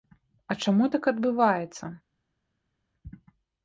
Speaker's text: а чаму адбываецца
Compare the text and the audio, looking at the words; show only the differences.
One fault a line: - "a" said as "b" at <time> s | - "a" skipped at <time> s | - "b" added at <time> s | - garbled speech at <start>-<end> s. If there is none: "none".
- "так" added at 0.9 s